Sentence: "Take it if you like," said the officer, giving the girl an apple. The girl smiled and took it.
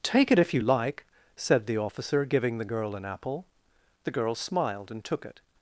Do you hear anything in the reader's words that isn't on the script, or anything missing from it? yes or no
no